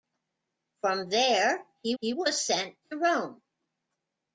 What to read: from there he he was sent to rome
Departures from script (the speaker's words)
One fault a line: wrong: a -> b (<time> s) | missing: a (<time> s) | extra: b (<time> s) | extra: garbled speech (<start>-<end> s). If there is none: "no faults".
no faults